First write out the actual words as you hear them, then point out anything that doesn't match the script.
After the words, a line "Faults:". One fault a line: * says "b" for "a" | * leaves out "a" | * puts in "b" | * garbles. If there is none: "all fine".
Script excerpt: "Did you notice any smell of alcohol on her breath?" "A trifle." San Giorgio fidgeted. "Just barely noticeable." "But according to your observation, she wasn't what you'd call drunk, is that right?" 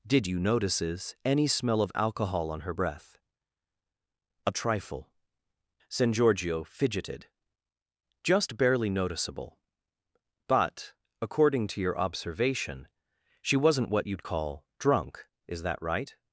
"Did you notices any smell of alcohol on her breath?" "A trifle." San Giorgio fidgeted. "Just barely noticeable." "But according to your observation, she wasn't what you'd call drunk, is that right?"
Faults:
* says "notices" for "notice"